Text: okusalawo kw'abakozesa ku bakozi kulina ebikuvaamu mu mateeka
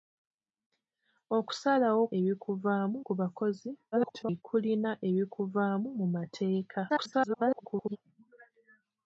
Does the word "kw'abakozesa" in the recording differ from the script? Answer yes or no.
yes